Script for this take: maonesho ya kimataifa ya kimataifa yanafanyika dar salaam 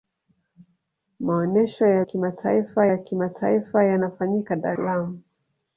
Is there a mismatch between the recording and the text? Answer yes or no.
no